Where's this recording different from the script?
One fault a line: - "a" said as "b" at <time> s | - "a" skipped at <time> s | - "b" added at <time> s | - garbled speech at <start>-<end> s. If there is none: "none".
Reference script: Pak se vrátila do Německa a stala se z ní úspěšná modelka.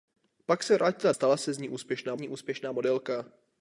- "do Německa a" skipped at 1.1 s
- "ní úspěšná" added at 2.2 s